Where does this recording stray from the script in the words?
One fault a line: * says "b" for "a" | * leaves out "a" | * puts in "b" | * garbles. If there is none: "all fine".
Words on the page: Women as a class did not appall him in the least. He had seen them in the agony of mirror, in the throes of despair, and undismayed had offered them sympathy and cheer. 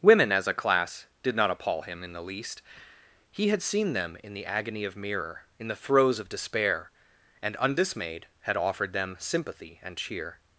all fine